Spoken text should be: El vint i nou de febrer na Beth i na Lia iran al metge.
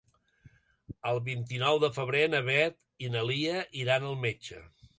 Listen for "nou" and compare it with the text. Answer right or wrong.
right